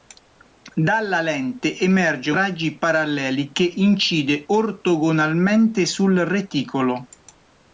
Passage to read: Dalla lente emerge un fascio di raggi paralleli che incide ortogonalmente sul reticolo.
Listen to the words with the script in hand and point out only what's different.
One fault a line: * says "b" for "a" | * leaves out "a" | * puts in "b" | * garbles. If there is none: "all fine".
* leaves out "un fascio di"